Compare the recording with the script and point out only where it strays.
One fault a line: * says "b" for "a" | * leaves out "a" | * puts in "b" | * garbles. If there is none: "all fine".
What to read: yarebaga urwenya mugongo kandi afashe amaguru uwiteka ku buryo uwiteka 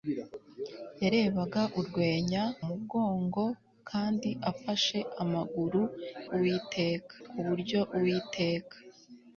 all fine